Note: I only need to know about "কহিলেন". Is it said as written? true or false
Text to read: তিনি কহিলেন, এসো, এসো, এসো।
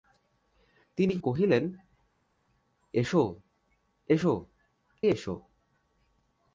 true